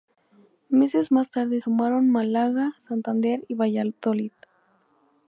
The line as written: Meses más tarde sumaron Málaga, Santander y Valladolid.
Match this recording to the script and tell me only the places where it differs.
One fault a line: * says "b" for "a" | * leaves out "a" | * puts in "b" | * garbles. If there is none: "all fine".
all fine